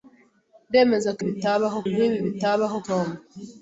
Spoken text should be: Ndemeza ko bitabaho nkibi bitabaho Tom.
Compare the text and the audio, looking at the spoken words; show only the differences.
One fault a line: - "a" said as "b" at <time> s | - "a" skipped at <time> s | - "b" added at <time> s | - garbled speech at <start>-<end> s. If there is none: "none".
none